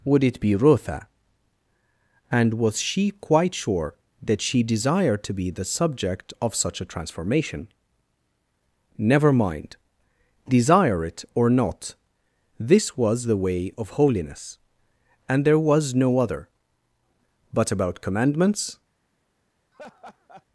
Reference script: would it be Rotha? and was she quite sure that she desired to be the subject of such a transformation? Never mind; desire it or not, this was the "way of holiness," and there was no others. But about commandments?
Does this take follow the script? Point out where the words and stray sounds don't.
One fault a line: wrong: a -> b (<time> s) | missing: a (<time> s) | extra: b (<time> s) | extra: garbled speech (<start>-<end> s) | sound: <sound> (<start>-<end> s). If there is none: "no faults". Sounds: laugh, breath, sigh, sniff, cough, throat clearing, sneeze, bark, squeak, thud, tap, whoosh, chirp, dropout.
wrong: others -> other (16.2 s)
sound: laugh (19.7-20.5 s)